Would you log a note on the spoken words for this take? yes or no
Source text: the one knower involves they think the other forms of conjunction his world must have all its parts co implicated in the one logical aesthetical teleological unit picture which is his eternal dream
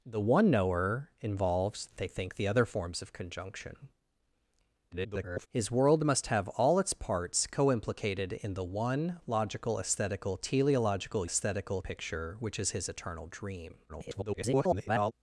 yes